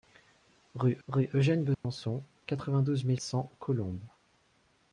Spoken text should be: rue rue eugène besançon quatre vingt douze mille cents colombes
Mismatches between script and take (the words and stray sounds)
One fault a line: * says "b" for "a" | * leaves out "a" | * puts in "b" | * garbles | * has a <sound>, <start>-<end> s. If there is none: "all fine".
* has a dropout, 1.7-1.8 s